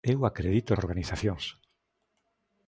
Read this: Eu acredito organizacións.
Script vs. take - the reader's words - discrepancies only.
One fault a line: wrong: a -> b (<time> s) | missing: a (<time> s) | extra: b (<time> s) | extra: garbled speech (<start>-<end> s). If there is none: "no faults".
no faults